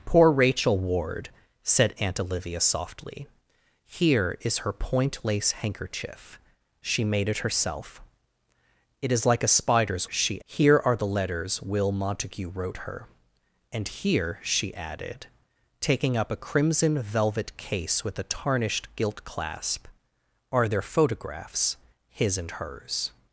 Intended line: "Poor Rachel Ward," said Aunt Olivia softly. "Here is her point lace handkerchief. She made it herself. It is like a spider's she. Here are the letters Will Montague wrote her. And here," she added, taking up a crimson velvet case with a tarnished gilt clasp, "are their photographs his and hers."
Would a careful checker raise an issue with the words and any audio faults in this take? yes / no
no